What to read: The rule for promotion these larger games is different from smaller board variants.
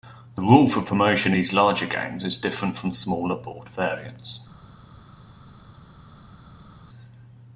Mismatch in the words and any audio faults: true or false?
false